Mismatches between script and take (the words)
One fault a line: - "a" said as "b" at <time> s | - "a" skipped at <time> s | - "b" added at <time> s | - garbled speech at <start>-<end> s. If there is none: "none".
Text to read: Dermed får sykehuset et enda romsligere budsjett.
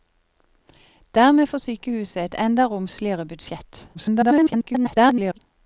- garbled speech at 3.9-5.4 s